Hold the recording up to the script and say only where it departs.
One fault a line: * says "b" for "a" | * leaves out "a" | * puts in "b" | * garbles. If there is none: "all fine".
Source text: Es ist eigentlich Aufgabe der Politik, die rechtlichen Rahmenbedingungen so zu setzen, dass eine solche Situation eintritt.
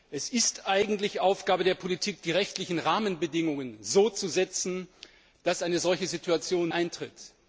all fine